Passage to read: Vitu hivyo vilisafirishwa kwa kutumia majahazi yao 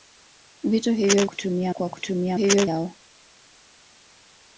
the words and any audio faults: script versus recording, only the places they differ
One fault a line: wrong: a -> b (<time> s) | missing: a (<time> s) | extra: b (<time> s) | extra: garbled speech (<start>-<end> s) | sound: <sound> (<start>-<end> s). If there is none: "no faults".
wrong: vilisafirishwa -> kutumia (1.2 s)
wrong: majahazi -> hivyo (2.3 s)